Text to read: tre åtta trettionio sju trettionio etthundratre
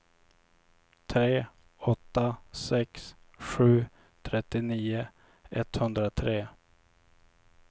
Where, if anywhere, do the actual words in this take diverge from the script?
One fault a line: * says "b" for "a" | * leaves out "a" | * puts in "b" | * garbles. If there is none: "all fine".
* says "sex" for "trettionio"